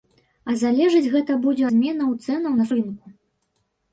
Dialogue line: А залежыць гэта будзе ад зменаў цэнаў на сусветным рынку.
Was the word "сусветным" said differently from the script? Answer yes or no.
yes